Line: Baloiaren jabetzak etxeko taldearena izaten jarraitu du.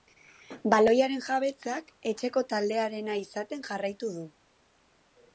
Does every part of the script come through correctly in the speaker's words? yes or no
yes